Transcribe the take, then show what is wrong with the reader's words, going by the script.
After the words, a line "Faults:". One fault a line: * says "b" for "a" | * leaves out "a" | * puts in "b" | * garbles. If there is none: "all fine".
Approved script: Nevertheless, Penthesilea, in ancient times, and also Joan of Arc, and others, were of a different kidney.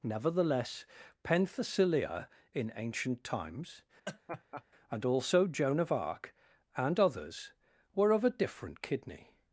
Nevertheless, Penthesilea, in ancient times, and also Joan of Arc, and others, were of a different kidney.
Faults:
all fine